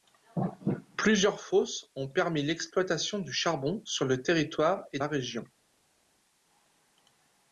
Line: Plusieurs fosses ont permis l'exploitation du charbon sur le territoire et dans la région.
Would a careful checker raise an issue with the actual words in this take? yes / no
yes